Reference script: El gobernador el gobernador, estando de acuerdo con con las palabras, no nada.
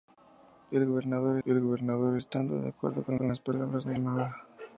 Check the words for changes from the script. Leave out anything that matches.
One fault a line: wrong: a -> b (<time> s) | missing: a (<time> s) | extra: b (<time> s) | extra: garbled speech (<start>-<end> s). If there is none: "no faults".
no faults